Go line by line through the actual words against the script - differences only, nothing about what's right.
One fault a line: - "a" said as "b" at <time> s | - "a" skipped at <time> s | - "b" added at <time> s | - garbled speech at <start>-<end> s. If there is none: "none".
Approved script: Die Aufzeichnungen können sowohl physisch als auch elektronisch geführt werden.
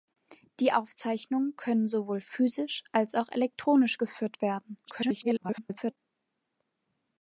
- garbled speech at 4.8-6.0 s